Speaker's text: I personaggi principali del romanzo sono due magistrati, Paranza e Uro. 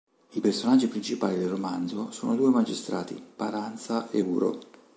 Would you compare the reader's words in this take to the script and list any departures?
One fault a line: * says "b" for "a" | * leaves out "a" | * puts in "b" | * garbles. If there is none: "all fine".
all fine